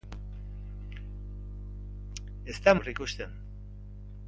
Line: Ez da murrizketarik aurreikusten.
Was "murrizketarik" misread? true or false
true